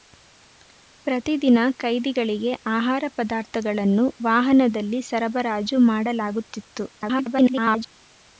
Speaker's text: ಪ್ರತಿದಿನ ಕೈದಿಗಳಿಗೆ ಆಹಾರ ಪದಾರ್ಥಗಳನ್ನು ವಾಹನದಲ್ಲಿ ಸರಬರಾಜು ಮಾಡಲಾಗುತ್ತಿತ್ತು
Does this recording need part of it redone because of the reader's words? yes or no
yes